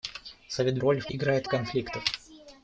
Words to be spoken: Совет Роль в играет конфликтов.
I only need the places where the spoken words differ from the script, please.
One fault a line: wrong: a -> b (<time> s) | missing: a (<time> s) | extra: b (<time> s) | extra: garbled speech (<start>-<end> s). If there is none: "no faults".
no faults